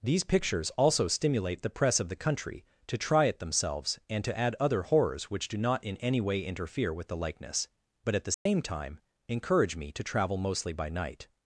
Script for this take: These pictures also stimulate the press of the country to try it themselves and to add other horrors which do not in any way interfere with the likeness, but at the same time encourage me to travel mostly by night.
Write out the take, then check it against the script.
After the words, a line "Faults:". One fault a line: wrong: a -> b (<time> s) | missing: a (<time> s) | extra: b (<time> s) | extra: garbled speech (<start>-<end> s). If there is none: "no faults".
These pictures also stimulate the press of the country to try it themselves and to add other horrors which do not in any way interfere with the likeness, but at the same time encourage me to travel mostly by night.
Faults:
no faults